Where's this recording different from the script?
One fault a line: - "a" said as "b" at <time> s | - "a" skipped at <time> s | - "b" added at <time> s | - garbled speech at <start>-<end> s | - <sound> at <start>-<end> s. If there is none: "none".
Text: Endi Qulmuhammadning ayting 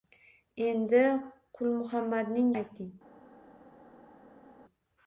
none